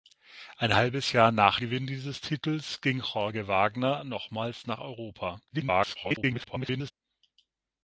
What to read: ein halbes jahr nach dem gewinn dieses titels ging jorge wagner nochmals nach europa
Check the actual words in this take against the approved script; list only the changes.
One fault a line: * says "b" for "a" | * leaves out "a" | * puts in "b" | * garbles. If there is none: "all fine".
* leaves out "dem"
* garbles